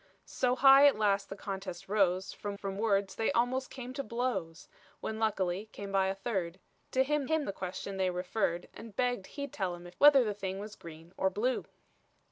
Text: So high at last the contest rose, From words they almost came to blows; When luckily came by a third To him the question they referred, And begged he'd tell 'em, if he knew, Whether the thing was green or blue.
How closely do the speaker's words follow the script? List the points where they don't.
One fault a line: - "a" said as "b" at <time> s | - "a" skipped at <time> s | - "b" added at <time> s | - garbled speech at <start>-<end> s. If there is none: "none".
- "From" added at 2.5 s
- "him" added at 7.2 s
- "he knew" skipped at 10.0 s